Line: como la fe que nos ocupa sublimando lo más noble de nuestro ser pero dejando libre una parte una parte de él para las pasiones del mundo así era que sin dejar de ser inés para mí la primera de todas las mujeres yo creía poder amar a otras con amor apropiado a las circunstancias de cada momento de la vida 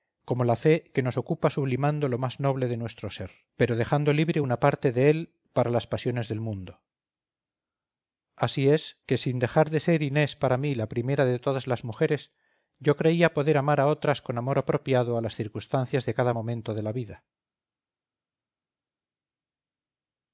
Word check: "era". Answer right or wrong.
wrong